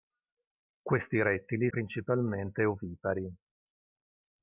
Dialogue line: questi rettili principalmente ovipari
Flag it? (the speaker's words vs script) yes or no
no